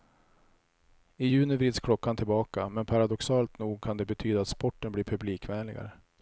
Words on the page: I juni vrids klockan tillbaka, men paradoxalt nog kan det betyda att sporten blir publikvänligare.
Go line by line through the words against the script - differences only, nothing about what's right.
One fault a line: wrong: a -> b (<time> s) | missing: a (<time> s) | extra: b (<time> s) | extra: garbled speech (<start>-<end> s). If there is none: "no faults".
no faults